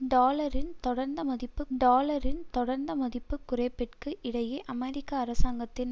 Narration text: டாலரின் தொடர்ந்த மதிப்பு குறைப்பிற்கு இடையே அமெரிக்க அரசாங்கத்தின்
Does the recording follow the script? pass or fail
fail